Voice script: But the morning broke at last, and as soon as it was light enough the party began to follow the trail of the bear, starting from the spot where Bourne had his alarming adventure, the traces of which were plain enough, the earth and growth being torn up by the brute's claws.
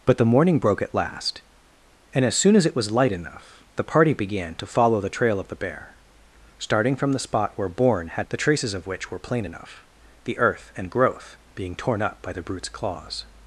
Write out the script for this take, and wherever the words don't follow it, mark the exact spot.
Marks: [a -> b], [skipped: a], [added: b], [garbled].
But the morning broke at last, and as soon as it was light enough the party began to follow the trail of the bear, starting from the spot where Bourne had [skipped: his alarming adventure,] the traces of which were plain enough, the earth and growth being torn up by the brute's claws.